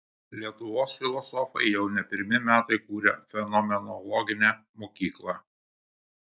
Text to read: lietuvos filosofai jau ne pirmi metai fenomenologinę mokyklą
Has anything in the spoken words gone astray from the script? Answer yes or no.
yes